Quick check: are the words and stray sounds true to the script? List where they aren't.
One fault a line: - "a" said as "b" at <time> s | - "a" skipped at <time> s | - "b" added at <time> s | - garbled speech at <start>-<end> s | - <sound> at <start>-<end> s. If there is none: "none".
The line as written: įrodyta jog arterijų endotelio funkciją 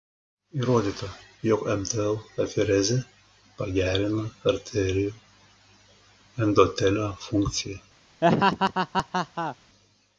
- "mtl aferezė pagerina" added at 1.8 s
- laugh at 8.2-9.6 s